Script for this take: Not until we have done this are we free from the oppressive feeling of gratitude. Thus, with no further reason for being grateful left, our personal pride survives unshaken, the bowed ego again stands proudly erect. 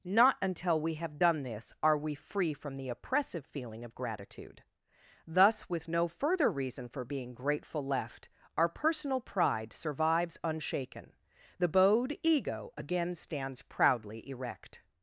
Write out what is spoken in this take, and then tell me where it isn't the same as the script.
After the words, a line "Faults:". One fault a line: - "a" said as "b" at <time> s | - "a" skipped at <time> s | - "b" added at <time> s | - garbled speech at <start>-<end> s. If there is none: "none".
Not until we have done this are we free from the oppressive feeling of gratitude. Thus, with no further reason for being grateful left, our personal pride survives unshaken, the bowed ego again stands proudly erect.
Faults:
none